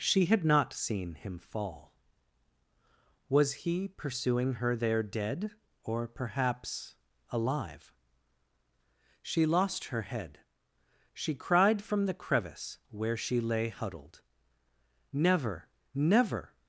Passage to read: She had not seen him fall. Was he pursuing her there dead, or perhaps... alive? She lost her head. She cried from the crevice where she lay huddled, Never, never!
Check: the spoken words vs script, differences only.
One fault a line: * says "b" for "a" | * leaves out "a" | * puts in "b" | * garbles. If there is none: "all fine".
all fine